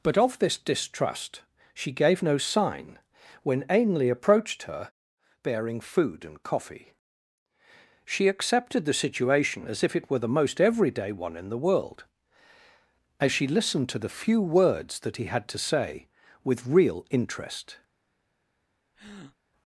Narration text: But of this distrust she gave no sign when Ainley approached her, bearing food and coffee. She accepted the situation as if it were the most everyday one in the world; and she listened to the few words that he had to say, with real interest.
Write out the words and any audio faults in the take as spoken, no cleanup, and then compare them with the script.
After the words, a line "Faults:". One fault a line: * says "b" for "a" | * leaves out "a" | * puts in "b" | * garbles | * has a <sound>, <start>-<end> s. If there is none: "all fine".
But of this distrust she gave no sign when Ainley approached her, bearing food and coffee. She accepted the situation as if it were the most everyday one in the world; as she listened to the few words that he had to say, with real interest.
Faults:
* says "as" for "and"
* has a breath, 18.9-19.4 s